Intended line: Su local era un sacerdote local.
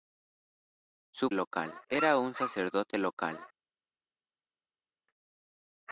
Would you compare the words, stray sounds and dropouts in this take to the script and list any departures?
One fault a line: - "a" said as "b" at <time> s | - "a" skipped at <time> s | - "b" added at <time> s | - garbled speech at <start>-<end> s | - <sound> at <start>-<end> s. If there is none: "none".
none